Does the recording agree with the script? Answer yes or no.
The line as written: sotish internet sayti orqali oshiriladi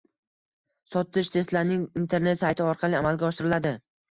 no